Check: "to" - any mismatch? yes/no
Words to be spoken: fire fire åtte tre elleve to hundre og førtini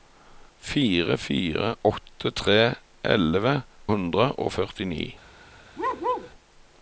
yes